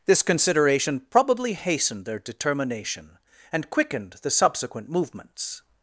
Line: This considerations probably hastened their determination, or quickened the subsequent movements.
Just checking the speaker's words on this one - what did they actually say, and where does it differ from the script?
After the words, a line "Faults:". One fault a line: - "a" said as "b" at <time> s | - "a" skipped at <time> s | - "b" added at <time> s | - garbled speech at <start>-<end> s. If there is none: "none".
This consideration probably hastened their determination, and quickened the subsequent movements.
Faults:
- "considerations" said as "consideration" at 0.2 s
- "or" said as "and" at 3.5 s